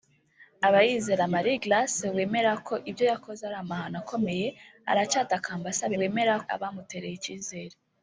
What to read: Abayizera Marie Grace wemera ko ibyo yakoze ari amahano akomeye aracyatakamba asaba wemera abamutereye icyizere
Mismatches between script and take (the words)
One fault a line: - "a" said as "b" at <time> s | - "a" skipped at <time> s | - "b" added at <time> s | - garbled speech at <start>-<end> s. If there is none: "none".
none